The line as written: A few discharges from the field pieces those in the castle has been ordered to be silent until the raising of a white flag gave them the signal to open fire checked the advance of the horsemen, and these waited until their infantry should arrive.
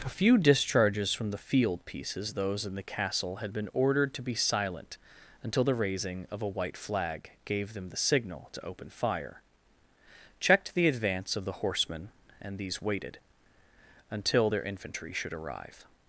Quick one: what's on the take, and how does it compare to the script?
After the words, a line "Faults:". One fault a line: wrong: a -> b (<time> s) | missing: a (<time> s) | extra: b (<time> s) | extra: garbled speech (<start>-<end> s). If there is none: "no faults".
A few discharges from the field pieces those in the castle had been ordered to be silent until the raising of a white flag gave them the signal to open fire checked the advance of the horsemen, and these waited until their infantry should arrive.
Faults:
wrong: has -> had (3.4 s)